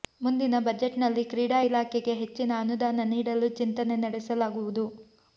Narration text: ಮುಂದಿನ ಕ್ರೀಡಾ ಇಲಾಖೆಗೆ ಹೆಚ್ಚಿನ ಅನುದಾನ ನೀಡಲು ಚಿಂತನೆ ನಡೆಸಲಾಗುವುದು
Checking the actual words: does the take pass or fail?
fail